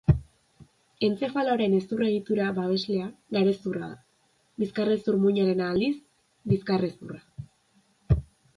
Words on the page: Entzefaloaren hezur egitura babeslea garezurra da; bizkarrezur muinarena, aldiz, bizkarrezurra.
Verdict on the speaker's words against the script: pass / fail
pass